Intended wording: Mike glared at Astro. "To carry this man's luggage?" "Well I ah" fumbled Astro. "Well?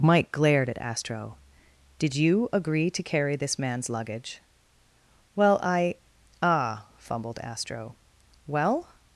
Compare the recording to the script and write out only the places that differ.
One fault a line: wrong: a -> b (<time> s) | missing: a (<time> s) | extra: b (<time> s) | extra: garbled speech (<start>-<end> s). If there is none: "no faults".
extra: Did you agree (2.0 s)